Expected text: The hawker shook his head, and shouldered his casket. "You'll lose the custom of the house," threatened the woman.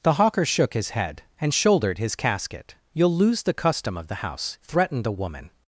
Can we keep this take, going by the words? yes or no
yes